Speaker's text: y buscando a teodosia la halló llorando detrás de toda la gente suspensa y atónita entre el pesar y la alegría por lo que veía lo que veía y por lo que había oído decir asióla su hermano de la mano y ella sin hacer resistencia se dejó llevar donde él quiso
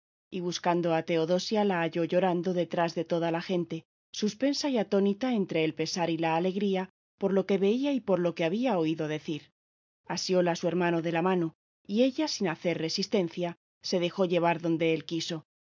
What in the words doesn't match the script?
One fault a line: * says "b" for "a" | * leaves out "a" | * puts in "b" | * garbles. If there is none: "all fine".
* leaves out "lo que veía"